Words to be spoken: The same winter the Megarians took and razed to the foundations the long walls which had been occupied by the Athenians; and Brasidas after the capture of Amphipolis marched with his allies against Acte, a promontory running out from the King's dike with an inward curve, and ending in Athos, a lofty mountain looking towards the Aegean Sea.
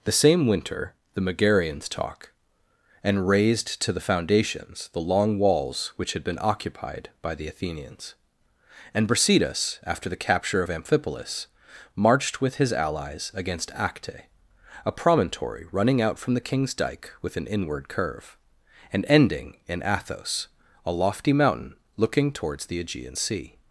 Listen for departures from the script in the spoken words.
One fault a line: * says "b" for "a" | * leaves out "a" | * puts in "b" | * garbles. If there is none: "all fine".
* says "talk" for "took"